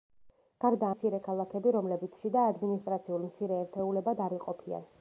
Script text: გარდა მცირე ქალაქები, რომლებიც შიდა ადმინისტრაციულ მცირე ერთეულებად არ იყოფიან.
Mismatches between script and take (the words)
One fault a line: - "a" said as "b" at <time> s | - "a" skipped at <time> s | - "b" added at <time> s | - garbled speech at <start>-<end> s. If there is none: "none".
none